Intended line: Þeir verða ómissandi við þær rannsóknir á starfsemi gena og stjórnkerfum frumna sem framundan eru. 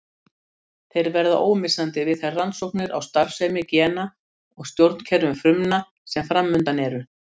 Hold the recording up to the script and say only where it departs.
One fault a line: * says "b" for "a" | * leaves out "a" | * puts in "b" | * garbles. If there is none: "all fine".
all fine